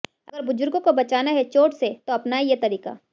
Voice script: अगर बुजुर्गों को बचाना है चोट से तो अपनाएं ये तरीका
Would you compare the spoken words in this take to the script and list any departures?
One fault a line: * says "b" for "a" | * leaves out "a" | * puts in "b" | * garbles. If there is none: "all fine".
all fine